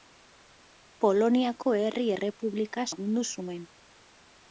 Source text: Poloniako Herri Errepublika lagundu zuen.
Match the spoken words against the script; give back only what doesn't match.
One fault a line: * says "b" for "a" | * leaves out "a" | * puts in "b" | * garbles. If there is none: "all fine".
all fine